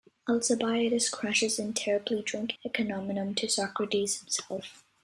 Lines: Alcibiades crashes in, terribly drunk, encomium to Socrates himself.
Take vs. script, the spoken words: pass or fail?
pass